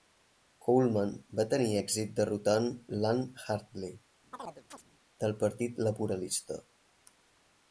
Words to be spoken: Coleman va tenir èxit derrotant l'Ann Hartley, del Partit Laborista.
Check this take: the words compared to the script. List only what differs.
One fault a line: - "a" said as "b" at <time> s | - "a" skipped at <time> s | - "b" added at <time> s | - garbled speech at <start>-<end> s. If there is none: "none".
none